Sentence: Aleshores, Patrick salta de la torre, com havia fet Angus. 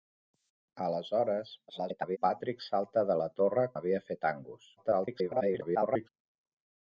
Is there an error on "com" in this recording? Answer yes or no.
yes